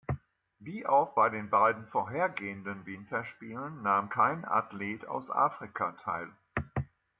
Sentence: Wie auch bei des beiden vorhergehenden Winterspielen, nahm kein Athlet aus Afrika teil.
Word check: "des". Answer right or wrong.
wrong